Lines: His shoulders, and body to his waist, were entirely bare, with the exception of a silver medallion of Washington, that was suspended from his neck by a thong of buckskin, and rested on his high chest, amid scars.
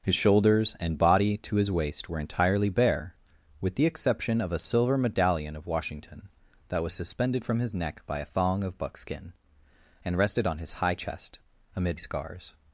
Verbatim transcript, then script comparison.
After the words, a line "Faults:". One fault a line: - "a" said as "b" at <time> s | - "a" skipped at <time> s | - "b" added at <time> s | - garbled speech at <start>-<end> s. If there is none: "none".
His shoulders, and body to his waist, were entirely bare, with the exception of a silver medallion of Washington, that was suspended from his neck by a thong of buckskin, and rested on his high chest, amid scars.
Faults:
none